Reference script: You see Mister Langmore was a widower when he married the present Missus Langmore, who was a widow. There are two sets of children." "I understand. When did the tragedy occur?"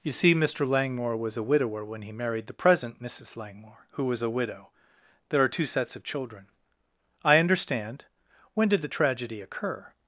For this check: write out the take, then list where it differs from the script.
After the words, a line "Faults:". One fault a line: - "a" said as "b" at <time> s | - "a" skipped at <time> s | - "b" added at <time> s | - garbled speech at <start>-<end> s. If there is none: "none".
You see Mister Langmore was a widower when he married the present Missus Langmore, who was a widow. There are two sets of children." "I understand. When did the tragedy occur?"
Faults:
none